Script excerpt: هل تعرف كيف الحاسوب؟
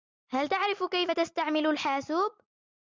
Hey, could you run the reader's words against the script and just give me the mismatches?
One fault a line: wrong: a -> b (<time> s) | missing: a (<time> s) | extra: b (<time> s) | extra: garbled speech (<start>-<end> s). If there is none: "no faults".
extra: تستعمل (1.1 s)